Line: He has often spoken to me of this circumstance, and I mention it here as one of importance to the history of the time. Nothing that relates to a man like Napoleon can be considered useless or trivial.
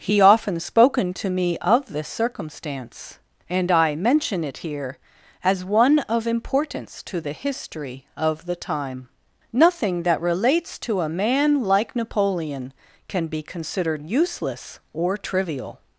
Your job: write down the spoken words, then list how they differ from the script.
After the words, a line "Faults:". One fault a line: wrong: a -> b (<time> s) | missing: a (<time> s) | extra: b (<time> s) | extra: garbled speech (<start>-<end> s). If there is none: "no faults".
He often spoken to me of this circumstance, and I mention it here as one of importance to the history of the time. Nothing that relates to a man like Napoleon can be considered useless or trivial.
Faults:
missing: has (0.2 s)